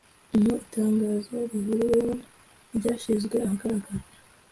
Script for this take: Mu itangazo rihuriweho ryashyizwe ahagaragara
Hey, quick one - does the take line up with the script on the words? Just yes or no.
yes